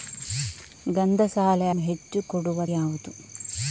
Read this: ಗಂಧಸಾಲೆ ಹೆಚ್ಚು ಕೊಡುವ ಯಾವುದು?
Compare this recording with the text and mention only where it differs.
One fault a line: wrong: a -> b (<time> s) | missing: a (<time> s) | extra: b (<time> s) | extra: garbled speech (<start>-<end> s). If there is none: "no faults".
no faults